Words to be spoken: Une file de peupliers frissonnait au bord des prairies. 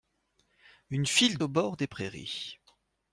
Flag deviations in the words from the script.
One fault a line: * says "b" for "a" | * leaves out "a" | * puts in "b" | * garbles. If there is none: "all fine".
* leaves out "de peupliers frissonnait"